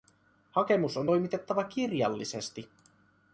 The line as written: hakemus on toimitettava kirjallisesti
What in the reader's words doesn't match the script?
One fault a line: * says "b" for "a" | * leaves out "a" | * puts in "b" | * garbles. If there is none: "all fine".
all fine